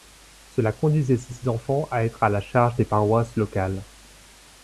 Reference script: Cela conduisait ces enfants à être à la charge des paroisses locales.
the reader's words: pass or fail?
fail